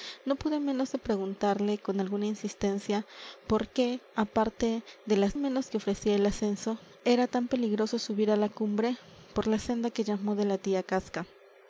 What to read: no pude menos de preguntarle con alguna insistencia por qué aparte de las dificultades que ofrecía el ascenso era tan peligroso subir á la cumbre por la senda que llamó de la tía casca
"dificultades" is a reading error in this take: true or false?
true